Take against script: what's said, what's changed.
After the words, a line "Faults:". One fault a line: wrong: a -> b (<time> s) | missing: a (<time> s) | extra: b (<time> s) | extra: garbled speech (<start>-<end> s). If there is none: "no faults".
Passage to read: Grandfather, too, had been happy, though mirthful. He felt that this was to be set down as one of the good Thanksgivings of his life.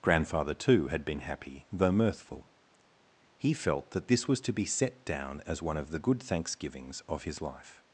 Grandfather, too, had been happy, though mirthful. He felt that this was to be set down as one of the good Thanksgivings of his life.
Faults:
no faults